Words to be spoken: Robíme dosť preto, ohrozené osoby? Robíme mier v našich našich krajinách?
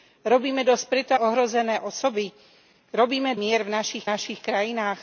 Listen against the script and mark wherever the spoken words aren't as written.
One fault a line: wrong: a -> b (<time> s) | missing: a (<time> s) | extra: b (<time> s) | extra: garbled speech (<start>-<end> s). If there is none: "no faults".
no faults